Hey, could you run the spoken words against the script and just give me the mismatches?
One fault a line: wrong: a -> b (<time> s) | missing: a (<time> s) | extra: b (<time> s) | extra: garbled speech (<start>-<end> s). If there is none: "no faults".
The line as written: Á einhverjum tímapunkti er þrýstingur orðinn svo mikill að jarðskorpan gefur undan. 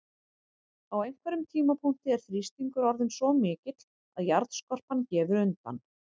no faults